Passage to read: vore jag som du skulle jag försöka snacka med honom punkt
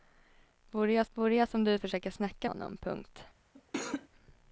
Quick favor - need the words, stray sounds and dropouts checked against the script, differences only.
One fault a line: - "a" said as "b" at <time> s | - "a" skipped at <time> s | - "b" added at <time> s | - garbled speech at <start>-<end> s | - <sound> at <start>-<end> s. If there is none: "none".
- "vore jag" added at 1.1 s
- "skulle" skipped at 1.8 s
- "med" skipped at 2.5 s
- cough at 3.5-4.1 s